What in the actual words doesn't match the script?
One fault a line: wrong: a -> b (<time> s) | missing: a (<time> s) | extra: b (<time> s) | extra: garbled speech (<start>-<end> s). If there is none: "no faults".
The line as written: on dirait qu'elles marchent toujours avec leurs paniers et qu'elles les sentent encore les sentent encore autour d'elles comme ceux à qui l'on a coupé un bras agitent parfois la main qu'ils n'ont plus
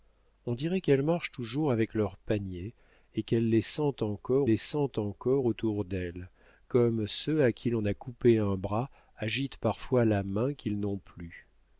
no faults